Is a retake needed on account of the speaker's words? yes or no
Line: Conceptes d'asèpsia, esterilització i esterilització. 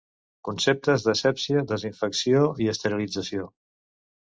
yes